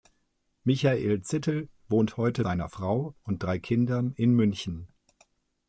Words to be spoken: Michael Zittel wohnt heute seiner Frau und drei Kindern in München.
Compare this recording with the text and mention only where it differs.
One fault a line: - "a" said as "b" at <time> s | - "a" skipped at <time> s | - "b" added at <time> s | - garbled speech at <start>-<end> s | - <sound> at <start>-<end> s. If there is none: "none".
none